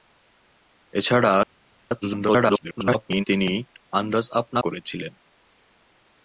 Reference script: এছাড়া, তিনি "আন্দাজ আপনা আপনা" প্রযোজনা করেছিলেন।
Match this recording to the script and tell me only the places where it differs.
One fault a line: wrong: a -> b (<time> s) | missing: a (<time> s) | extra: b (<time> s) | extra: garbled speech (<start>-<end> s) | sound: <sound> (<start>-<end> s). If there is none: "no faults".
extra: garbled speech (2.0-3.2 s)
missing: আপনা প্রযোজনা (4.6 s)